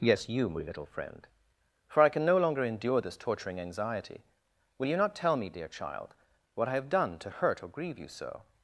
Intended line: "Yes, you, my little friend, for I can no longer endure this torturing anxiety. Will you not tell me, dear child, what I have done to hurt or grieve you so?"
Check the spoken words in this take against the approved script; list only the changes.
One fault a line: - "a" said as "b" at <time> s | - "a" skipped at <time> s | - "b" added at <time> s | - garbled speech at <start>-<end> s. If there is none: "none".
none